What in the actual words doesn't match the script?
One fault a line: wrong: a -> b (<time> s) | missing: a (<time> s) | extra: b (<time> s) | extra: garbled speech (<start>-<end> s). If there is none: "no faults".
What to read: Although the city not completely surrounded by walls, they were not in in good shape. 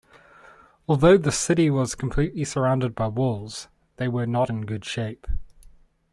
wrong: not -> was (1.7 s)
missing: in (4.6 s)